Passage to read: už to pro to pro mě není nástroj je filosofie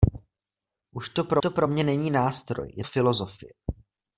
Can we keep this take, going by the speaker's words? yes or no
yes